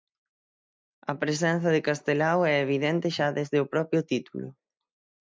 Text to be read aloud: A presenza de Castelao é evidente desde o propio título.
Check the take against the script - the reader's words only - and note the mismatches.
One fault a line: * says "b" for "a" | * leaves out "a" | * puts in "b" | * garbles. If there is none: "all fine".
* puts in "xa"